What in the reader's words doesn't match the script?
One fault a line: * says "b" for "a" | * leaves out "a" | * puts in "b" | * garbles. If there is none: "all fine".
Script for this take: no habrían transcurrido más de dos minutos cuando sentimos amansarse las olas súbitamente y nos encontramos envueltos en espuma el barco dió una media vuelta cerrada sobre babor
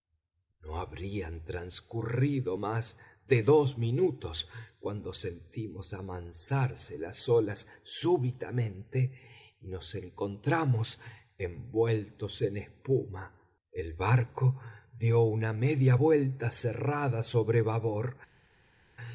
all fine